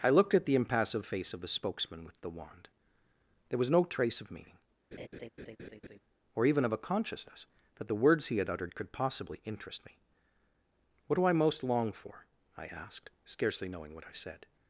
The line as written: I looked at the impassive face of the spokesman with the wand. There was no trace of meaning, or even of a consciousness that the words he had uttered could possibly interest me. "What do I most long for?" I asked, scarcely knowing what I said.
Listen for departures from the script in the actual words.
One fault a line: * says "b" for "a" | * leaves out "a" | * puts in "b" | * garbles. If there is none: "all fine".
all fine